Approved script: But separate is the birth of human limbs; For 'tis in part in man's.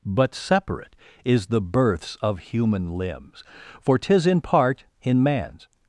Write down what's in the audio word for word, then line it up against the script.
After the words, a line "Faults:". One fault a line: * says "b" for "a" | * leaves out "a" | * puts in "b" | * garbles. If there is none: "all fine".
But separate is the births of human limbs; For 'tis in part in man's.
Faults:
* says "births" for "birth"